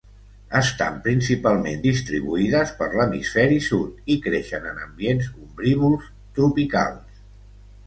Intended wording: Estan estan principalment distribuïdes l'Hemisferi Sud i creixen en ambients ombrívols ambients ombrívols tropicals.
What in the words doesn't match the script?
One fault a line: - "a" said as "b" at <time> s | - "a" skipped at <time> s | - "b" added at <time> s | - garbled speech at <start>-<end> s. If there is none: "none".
- "estan" skipped at 0.9 s
- "per" added at 2.8 s
- "ambients ombrívols" skipped at 6.1 s